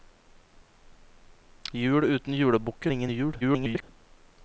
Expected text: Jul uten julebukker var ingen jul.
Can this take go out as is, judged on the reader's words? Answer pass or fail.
fail